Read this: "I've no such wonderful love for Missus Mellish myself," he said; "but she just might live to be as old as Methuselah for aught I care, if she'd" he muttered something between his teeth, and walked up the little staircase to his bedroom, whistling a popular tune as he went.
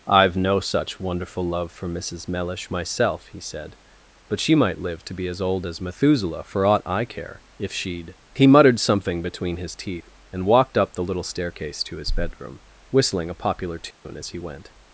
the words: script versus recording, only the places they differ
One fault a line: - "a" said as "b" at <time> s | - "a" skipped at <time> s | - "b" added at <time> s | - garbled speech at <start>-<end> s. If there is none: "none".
- "just" skipped at 4.5 s